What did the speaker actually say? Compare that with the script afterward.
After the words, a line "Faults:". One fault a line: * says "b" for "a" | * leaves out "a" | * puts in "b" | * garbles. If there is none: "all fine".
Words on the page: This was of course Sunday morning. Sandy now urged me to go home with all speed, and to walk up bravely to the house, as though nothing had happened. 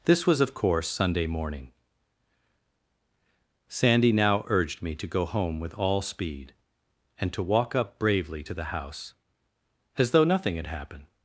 This was of course Sunday morning. Sandy now urged me to go home with all speed, and to walk up bravely to the house, as though nothing had happened.
Faults:
all fine